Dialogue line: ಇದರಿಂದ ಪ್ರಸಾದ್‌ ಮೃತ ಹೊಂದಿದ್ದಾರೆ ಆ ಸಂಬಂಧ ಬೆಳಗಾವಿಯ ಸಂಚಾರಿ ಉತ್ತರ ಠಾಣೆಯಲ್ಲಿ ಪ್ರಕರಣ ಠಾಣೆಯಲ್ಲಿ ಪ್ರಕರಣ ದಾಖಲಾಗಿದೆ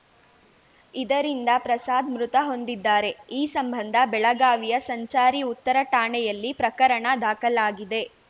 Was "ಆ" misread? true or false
true